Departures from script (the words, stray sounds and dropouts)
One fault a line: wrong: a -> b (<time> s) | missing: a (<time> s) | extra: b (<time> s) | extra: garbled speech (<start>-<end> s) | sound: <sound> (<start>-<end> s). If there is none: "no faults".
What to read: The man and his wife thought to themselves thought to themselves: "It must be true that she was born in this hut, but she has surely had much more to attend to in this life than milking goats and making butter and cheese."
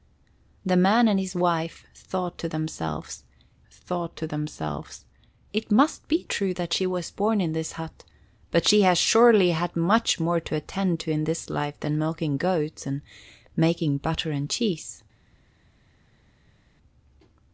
no faults